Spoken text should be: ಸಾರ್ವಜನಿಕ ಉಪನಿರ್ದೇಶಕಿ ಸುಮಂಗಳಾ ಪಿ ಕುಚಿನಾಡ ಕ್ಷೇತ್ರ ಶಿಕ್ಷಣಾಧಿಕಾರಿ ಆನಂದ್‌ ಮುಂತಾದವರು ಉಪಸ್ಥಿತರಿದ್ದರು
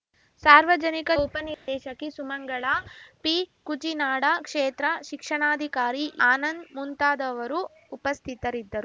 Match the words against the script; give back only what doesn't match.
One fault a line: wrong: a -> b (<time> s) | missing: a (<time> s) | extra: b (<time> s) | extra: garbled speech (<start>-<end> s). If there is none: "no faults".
no faults